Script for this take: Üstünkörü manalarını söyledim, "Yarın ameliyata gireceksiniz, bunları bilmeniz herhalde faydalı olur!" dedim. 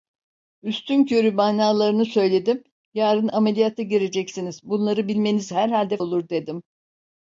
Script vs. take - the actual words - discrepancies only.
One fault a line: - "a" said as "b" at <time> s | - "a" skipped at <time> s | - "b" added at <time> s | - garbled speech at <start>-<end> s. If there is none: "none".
- "faydalı" skipped at 6.0 s